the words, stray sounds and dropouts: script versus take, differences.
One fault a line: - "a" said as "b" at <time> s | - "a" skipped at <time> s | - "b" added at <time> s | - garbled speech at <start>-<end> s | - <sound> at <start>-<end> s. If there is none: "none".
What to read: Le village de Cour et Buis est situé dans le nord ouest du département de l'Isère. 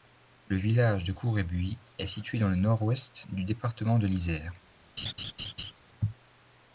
- laugh at 5.0-5.7 s